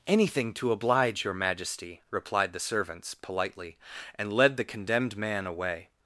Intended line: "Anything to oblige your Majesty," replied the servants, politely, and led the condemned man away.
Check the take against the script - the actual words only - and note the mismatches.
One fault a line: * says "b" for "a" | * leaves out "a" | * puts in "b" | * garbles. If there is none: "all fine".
all fine